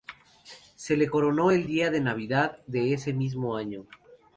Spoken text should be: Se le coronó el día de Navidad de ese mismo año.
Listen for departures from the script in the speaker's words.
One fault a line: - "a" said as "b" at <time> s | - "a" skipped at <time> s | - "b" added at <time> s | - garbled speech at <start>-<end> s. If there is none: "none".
none